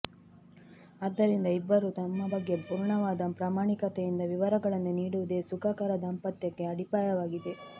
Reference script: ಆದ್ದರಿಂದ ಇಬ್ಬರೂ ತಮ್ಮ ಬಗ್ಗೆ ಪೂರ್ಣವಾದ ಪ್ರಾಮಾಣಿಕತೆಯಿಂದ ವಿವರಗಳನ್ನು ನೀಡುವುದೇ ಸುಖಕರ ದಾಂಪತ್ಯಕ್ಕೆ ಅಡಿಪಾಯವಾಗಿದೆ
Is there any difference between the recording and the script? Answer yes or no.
no